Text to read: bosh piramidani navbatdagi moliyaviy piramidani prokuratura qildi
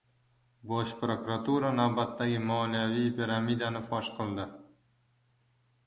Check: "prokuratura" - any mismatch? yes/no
yes